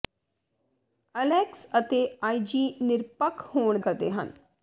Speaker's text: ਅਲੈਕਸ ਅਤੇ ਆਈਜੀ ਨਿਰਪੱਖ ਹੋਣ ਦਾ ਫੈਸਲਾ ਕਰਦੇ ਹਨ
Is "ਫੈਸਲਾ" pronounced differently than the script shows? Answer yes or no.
yes